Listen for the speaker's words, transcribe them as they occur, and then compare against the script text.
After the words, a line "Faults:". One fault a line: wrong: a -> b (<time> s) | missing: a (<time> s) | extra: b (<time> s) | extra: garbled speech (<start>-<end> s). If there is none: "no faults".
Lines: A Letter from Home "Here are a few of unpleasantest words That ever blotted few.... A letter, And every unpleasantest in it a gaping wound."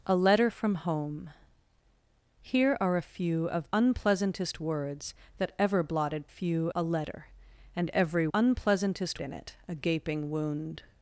A Letter from Home "Here are a few of unpleasantest words That ever blotted few.... A letter, And every unpleasantest in it a gaping wound."
Faults:
no faults